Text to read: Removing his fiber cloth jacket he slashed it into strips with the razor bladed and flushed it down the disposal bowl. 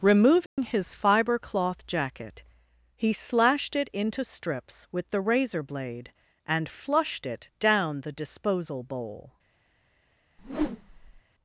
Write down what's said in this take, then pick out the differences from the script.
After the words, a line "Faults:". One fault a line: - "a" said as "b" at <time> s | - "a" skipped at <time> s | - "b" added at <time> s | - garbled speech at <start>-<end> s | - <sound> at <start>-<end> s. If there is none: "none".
Removing his fiber cloth jacket he slashed it into strips with the razor blade and flushed it down the disposal bowl.
Faults:
- dropout at 0.5-0.6 s
- "bladed" said as "blade" at 5.6 s
- whoosh at 10.4-11.2 s